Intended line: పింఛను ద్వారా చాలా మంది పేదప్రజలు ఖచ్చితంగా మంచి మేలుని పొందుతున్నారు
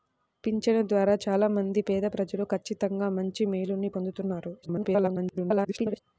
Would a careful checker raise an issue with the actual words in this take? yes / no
yes